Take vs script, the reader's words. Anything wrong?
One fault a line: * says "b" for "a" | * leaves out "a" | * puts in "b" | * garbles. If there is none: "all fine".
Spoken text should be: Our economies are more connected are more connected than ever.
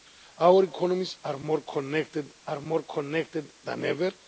all fine